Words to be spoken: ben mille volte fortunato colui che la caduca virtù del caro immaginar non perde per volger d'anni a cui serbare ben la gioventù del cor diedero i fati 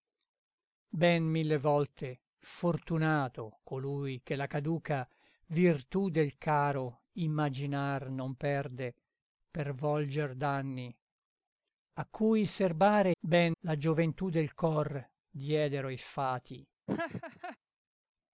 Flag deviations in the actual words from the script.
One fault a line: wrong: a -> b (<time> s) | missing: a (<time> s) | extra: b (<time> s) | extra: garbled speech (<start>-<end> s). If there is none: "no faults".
no faults